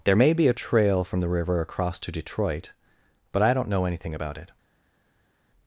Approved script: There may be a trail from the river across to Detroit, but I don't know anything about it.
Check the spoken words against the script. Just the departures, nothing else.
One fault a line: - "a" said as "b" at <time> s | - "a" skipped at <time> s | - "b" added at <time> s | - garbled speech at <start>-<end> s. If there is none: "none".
none